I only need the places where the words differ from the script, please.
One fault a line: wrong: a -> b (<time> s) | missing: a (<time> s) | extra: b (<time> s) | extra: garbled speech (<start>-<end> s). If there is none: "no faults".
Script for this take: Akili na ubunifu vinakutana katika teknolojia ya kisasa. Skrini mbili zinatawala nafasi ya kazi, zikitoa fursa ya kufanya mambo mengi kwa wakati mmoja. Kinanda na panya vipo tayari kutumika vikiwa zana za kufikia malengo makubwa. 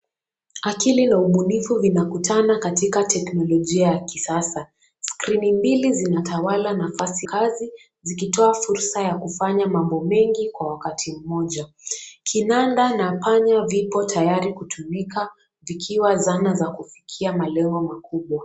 missing: ya (7.3 s)